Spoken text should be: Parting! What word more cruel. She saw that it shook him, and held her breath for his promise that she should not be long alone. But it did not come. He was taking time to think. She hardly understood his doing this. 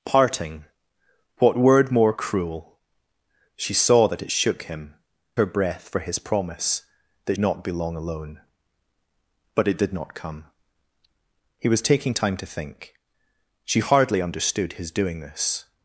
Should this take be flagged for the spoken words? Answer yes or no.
yes